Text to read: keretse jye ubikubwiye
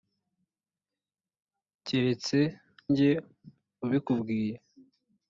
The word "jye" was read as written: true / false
true